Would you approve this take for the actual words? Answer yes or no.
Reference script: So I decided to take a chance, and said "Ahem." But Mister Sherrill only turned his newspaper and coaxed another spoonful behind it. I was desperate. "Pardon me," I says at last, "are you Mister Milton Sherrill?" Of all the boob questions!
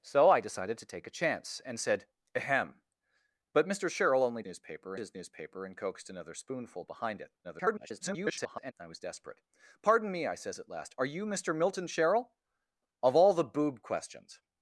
no